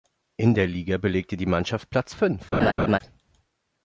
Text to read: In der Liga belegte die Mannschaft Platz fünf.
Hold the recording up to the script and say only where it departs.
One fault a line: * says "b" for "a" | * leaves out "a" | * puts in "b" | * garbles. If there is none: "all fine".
all fine